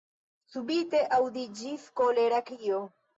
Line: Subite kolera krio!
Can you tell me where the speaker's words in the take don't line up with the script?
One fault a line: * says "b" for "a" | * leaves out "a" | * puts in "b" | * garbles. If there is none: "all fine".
* puts in "aŭdiĝis"